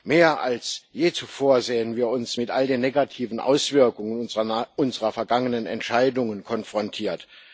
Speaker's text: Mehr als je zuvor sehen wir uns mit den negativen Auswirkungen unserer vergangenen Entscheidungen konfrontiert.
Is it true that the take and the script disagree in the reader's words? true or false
true